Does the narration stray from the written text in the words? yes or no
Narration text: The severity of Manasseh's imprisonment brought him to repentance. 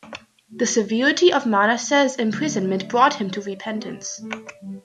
no